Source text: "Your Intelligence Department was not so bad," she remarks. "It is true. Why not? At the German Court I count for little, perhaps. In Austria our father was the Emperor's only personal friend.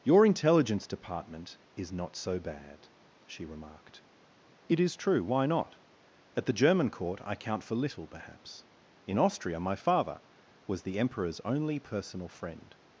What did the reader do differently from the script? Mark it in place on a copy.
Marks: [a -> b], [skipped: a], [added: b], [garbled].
"Your Intelligence Department [was -> is] not so bad," she [remarks. -> remarked] "It is true. Why not? At the German Court I count for little, perhaps. In Austria [our -> my] father was the Emperor's only personal friend.